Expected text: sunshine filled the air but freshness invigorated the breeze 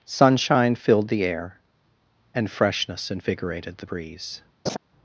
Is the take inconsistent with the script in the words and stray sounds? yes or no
yes